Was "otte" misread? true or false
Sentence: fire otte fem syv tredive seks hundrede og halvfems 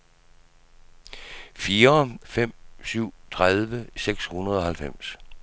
true